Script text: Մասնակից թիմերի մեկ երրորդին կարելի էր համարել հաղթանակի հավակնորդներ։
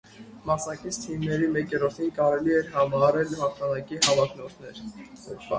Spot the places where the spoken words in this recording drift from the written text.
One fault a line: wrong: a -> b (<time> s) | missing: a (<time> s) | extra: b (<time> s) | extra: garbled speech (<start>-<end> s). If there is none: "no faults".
no faults